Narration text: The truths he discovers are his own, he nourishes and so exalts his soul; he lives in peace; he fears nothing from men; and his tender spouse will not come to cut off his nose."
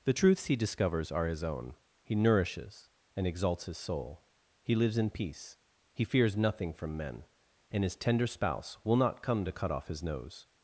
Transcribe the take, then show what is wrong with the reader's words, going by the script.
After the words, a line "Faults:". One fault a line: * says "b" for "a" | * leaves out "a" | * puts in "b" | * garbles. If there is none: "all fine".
The truths he discovers are his own, he nourishes and exalts his soul; he lives in peace; he fears nothing from men; and his tender spouse will not come to cut off his nose."
Faults:
* leaves out "so"